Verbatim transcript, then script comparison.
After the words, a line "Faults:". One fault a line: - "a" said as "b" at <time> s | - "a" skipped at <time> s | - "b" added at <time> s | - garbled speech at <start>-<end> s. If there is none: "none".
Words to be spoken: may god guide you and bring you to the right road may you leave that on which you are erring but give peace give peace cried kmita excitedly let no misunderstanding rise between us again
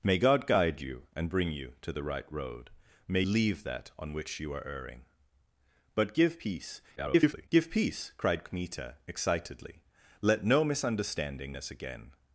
may god guide you and bring you to the right road may leave that on which you are erring but give peace [garbled] give peace cried kmita excitedly let no misunderstanding us again
Faults:
- "you" skipped at 3.2 s
- garbled speech at 7.0-7.5 s
- "rise between" skipped at 11.6 s